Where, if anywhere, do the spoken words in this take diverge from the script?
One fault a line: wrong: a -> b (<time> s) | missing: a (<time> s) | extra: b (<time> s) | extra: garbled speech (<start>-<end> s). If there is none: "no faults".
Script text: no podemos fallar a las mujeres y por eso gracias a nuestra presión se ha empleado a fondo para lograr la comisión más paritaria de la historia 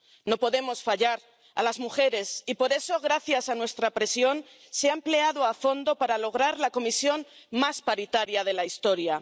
no faults